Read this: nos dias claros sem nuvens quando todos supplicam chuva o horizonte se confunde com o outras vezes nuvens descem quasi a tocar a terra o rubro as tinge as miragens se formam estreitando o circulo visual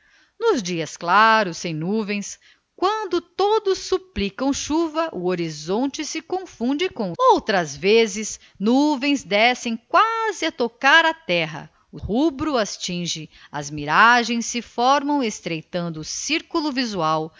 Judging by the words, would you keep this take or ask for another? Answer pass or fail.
pass